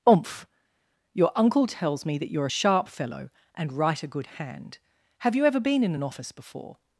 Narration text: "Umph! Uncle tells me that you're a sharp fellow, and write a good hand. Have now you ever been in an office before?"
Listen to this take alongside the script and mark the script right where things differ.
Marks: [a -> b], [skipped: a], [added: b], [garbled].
"Umph! [added: Your] Uncle tells me that you're a sharp fellow, and write a good hand. Have [skipped: now] you ever been in an office before?"